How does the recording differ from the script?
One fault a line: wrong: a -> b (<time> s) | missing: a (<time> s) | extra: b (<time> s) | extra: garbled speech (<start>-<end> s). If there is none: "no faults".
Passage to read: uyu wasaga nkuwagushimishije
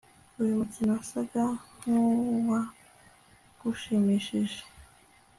extra: mukino (0.6 s)